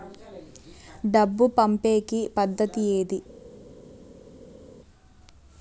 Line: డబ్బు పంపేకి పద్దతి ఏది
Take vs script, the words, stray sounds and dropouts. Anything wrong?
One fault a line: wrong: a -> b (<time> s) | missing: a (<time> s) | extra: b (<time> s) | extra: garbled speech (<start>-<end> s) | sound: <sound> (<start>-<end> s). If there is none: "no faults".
no faults